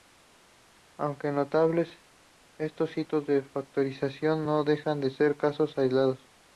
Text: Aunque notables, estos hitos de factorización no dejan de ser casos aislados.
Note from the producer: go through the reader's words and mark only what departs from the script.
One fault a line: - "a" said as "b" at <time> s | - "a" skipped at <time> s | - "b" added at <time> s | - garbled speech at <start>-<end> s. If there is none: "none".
none